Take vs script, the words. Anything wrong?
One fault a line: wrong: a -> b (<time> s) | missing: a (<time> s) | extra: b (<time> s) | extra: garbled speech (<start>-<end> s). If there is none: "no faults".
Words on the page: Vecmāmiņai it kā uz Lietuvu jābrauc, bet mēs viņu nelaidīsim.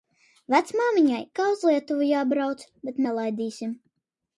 missing: it (1.2 s)
missing: mēs viņu (3.0 s)